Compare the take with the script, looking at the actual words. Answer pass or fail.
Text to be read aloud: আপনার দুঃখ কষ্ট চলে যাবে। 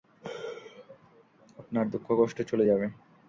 pass